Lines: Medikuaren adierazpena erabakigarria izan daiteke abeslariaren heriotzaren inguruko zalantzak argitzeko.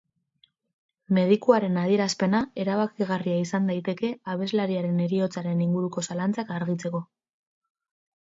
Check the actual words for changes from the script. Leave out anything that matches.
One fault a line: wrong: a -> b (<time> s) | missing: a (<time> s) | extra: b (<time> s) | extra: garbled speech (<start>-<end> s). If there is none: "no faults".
no faults